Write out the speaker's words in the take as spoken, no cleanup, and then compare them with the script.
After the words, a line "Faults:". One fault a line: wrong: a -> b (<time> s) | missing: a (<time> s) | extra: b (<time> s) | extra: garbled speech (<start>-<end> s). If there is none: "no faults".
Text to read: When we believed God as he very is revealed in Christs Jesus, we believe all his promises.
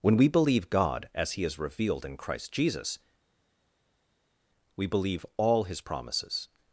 When we believe God as he is revealed in Christ Jesus, we believe all his promises.
Faults:
wrong: believed -> believe (0.3 s)
missing: very (1.4 s)
wrong: Christs -> Christ (2.2 s)